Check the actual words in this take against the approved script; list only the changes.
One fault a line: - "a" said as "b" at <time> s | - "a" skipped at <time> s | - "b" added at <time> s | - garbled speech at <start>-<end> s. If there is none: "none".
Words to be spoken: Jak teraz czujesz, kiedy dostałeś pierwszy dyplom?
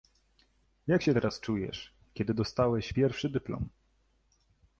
- "się" added at 1.0 s